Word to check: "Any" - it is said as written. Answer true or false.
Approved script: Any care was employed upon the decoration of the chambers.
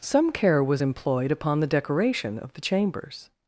false